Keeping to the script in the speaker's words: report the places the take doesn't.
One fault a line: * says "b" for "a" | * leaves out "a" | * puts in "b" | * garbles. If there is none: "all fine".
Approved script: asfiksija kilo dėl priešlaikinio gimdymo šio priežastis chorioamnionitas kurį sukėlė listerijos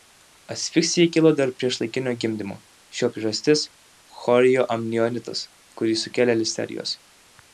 all fine